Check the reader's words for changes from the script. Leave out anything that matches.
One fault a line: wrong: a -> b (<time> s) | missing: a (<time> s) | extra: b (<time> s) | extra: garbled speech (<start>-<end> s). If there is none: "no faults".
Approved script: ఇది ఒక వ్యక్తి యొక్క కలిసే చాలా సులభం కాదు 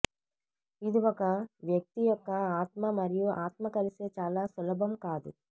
extra: ఆత్మ మరియు ఆత్మ (2.6 s)